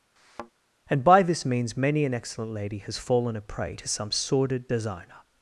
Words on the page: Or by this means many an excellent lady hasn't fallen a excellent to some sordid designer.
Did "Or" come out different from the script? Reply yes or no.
yes